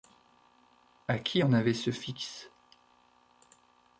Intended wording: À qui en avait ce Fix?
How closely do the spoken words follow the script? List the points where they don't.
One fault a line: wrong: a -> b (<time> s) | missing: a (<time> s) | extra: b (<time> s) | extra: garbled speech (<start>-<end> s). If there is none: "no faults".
no faults